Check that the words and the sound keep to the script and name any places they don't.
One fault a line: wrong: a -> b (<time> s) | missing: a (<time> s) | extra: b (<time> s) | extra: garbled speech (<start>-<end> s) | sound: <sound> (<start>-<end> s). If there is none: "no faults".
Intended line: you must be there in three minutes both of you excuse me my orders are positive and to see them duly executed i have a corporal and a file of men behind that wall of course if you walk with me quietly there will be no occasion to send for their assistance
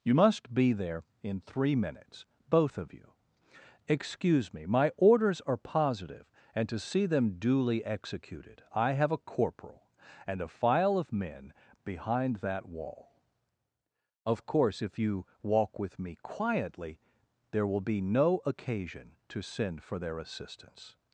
no faults